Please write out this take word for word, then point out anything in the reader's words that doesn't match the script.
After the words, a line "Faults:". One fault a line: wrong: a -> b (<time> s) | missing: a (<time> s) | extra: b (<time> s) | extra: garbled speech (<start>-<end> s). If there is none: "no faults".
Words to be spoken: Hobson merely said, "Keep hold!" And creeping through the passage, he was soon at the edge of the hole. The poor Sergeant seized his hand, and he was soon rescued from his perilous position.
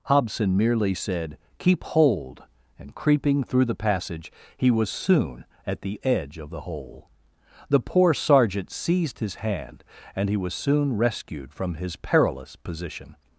Hobson merely said, "Keep hold!" And creeping through the passage, he was soon at the edge of the hole. The poor Sergeant seized his hand, and he was soon rescued from his perilous position.
Faults:
no faults